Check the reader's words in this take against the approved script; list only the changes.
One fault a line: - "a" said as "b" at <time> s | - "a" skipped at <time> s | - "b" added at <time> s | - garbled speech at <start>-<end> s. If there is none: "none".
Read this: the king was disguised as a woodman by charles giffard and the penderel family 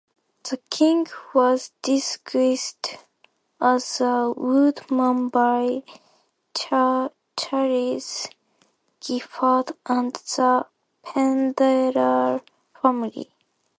none